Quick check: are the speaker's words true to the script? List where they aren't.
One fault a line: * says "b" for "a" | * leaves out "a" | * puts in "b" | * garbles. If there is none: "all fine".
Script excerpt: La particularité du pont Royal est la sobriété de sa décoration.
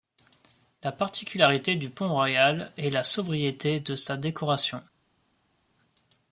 all fine